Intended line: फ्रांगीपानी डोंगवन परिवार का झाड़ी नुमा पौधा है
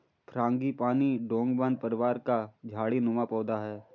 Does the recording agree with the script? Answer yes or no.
yes